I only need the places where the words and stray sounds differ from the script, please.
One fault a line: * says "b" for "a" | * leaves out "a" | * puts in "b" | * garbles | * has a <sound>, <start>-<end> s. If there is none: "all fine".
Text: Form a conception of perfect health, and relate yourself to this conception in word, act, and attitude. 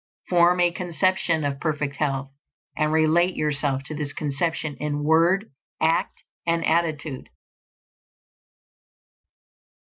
all fine